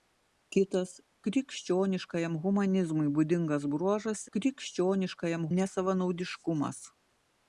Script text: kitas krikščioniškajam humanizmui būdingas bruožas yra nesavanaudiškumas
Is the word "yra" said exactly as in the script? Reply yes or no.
no